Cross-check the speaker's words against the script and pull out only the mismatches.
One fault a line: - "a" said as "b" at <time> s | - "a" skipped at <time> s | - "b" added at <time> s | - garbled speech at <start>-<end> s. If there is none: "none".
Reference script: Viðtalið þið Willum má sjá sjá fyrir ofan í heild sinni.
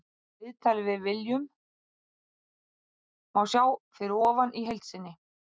- "þið" said as "við" at 0.9 s
- "sjá" skipped at 3.6 s